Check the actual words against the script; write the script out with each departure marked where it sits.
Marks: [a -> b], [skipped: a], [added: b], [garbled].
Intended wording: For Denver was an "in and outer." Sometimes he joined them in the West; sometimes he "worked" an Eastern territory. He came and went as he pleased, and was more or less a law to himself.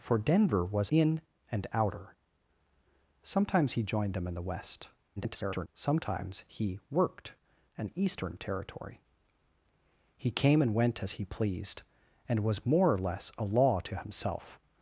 For Denver was [skipped: an] "in and outer." Sometimes he joined them in the West; [garbled] sometimes he "worked" an Eastern territory. He came and went as he pleased, and was more or less a law to himself.